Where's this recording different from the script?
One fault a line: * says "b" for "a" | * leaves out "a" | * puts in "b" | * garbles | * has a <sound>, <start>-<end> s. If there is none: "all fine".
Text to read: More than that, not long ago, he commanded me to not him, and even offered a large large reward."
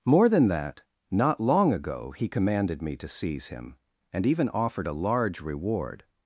* says "seize" for "not"
* leaves out "large"